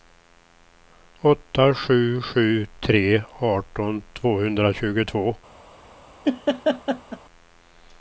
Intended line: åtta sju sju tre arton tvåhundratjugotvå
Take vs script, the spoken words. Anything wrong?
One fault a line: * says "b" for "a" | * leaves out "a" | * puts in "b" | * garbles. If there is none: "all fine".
all fine